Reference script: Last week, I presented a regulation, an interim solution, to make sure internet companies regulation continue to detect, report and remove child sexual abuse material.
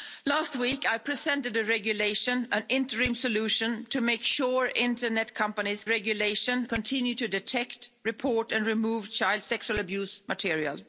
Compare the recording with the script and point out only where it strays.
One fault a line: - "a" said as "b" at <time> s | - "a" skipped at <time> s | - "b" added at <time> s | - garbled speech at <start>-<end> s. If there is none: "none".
none